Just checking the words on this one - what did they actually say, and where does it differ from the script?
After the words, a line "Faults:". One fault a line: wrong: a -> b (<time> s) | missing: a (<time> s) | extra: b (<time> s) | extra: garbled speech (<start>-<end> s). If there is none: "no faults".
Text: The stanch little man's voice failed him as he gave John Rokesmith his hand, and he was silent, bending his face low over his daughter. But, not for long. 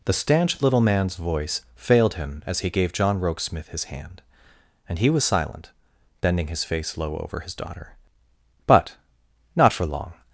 The stanch little man's voice failed him as he gave John Rokesmith his hand, and he was silent, bending his face low over his daughter. But, not for long.
Faults:
no faults